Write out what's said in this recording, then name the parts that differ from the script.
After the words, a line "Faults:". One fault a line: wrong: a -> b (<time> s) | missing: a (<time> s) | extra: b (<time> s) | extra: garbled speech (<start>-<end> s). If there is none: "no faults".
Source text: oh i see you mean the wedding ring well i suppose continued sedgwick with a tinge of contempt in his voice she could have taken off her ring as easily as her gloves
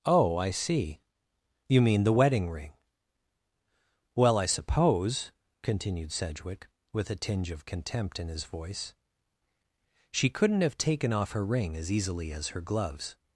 oh i see you mean the wedding ring well i suppose continued sedgwick with a tinge of contempt in his voice she couldn't have taken off her ring as easily as her gloves
Faults:
wrong: could -> couldn't (10.3 s)